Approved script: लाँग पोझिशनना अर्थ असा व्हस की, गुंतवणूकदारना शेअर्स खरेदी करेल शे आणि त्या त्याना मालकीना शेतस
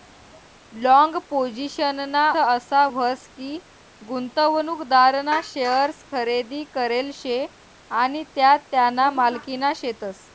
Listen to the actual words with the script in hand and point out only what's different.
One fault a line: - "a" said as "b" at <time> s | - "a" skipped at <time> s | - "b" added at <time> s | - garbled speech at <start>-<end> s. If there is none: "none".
- "अर्थ" skipped at 2.3 s